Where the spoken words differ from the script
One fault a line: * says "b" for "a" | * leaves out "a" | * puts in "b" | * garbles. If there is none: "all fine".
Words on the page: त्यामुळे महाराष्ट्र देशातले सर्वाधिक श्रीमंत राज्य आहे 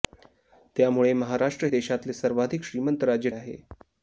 all fine